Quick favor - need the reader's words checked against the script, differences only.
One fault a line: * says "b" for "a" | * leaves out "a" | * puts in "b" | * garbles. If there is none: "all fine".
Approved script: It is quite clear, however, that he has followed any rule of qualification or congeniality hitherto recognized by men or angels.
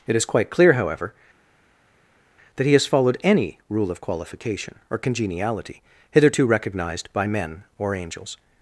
all fine